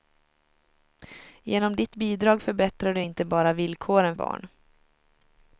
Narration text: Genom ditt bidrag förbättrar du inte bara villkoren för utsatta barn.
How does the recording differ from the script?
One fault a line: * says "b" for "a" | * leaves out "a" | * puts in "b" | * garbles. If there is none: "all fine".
* leaves out "för utsatta"